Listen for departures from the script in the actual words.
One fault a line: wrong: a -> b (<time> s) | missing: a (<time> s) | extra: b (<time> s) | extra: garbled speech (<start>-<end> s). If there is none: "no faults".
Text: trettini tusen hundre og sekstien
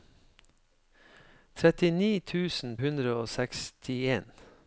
no faults